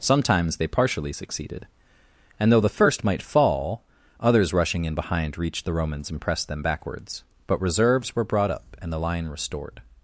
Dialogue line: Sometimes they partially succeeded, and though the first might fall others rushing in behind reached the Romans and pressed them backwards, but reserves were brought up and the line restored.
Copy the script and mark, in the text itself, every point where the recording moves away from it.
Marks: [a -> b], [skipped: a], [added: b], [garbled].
Sometimes they partially succeeded, and though the first might fall others rushing in behind reached the Romans and pressed them backwards, but reserves were brought up and the line restored.